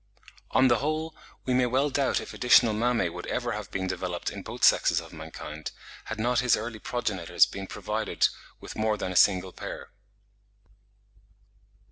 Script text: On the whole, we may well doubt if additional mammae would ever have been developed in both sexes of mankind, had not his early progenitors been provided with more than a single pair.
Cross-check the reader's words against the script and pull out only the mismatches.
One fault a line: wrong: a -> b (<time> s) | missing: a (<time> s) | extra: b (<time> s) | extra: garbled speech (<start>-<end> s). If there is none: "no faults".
no faults